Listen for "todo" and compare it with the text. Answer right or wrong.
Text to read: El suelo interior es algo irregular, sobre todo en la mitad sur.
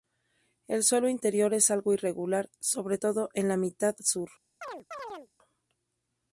right